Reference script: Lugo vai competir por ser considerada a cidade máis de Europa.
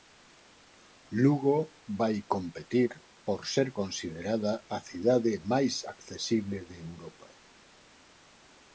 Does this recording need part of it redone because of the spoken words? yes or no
yes